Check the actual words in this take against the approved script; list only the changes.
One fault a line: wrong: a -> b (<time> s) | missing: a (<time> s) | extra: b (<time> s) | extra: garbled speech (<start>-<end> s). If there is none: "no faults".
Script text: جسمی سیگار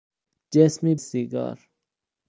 no faults